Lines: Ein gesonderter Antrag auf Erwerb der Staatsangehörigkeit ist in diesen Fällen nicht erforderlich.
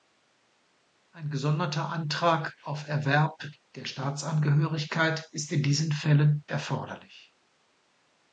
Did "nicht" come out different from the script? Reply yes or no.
yes